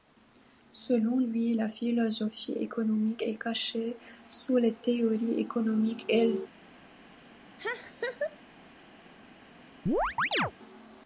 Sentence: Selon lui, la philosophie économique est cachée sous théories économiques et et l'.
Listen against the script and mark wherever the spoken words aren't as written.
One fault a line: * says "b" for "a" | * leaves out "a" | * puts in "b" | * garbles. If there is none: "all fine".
* puts in "les"
* leaves out "et"